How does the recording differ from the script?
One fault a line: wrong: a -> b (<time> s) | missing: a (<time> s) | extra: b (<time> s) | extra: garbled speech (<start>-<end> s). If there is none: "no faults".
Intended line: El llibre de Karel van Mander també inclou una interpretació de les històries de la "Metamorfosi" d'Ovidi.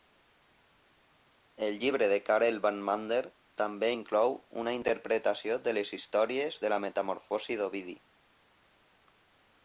no faults